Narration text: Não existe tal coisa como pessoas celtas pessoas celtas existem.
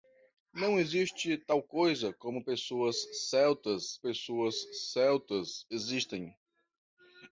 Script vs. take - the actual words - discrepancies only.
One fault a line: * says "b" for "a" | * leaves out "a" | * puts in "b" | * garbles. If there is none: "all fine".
all fine